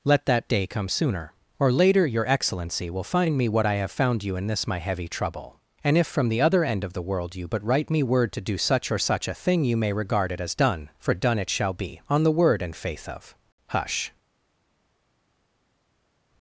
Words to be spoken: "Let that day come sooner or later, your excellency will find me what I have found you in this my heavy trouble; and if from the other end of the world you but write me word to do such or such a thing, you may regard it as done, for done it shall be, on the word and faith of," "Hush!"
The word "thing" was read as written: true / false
true